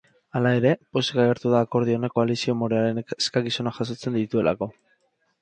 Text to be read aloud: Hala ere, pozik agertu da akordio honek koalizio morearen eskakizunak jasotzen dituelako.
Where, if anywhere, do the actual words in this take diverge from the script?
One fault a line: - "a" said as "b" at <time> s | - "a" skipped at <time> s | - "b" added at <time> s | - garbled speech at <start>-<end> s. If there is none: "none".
none